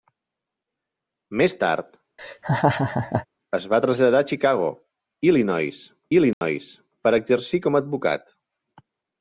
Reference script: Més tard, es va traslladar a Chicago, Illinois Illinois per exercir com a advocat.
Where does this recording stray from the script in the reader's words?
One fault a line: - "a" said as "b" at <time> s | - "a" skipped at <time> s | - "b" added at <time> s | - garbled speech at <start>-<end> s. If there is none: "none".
none